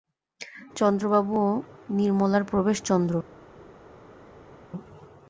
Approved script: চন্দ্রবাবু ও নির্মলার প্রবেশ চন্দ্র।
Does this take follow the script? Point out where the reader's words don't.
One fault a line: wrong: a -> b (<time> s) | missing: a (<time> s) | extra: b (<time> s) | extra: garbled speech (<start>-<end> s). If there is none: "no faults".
no faults